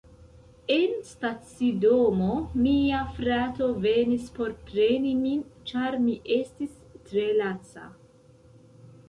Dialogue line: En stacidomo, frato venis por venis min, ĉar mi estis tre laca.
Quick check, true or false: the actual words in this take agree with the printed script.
false